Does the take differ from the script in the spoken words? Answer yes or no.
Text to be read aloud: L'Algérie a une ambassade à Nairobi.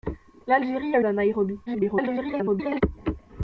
yes